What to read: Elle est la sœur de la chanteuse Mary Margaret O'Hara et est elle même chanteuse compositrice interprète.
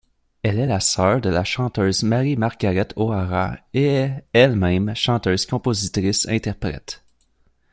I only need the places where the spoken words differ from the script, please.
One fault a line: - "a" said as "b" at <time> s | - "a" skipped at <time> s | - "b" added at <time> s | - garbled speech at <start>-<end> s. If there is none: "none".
none